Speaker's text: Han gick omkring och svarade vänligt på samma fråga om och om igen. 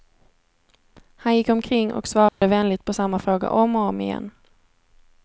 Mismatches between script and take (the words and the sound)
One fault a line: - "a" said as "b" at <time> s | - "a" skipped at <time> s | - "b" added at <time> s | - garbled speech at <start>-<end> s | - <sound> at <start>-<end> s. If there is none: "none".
- dropout at 2.3-2.4 s